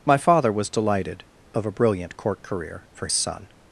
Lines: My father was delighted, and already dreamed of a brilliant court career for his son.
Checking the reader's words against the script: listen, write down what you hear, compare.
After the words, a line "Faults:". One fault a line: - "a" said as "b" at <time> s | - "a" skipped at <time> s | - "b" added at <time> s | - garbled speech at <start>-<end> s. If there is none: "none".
My father was delighted, of a brilliant court career for son.
Faults:
- "and already dreamed" skipped at 1.2 s
- "his" skipped at 3.1 s